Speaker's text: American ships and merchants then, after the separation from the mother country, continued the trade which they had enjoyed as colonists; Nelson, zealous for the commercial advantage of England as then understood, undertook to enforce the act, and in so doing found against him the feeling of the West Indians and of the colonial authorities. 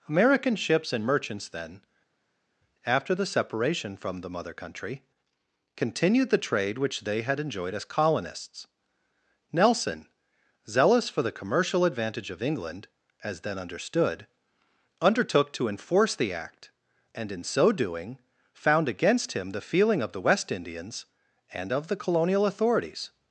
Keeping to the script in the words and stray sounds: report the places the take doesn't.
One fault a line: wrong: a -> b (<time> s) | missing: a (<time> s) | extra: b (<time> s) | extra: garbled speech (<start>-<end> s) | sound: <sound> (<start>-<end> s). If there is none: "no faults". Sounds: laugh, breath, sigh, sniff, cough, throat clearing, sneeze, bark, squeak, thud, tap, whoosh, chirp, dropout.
no faults